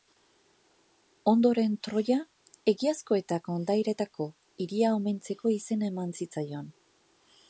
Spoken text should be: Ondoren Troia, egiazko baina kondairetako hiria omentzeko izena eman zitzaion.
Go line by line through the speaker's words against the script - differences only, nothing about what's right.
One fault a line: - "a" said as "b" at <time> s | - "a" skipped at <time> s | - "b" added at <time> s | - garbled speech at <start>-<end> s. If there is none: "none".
- "baina" said as "eta" at 3.2 s